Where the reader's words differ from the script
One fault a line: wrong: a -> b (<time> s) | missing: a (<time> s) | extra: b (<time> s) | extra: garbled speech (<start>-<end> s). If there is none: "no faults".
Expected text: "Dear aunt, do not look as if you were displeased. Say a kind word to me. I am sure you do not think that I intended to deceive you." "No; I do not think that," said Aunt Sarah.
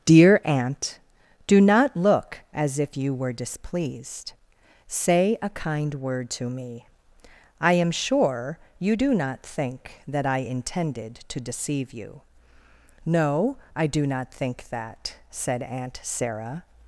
no faults